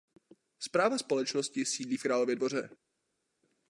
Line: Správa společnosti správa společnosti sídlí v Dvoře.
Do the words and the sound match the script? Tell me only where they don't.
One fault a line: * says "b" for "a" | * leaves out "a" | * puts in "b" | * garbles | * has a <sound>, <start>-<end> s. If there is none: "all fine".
* leaves out "správa společnosti"
* puts in "Králově"